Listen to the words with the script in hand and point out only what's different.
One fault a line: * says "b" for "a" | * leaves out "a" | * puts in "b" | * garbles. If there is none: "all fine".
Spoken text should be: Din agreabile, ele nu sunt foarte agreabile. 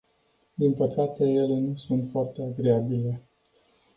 * says "păcate" for "agreabile"